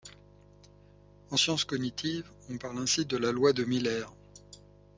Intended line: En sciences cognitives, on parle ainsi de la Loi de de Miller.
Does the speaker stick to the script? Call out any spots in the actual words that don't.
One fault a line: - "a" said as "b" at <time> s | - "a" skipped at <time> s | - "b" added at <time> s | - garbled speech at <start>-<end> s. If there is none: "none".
- "de" skipped at 3.6 s